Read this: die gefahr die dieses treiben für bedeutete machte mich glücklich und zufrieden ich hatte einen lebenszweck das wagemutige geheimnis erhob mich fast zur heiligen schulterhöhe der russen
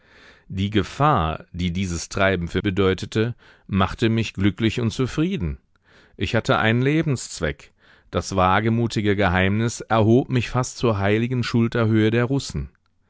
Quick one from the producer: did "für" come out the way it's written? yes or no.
yes